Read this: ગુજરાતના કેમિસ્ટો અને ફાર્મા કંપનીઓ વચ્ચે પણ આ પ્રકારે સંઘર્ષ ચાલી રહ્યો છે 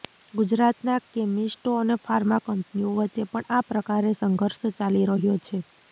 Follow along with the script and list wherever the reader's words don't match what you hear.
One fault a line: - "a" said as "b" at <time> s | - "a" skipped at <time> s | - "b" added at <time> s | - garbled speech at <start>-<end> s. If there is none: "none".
none